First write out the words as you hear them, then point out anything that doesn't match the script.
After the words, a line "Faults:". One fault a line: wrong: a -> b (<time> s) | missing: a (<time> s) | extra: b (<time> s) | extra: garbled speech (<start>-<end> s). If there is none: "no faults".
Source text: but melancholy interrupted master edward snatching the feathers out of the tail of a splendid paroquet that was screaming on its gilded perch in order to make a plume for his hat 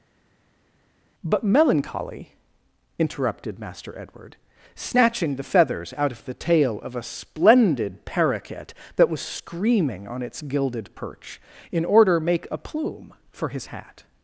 but melancholy interrupted master edward snatching the feathers out of the tail of a splendid paroquet that was screaming on its gilded perch in order make a plume for his hat
Faults:
missing: to (12.2 s)